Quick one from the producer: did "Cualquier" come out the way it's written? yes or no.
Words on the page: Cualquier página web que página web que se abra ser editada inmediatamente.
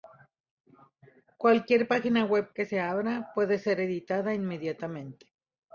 yes